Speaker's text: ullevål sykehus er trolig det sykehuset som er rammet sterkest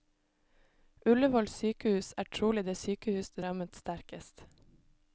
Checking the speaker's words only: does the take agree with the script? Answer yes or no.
no